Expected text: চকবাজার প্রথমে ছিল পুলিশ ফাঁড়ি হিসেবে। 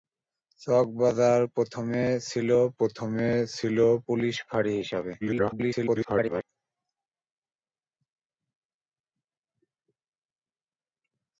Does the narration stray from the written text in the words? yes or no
yes